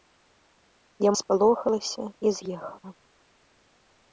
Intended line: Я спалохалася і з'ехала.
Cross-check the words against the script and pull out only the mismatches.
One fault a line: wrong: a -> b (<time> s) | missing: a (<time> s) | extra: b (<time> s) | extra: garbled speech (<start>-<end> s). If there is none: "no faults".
no faults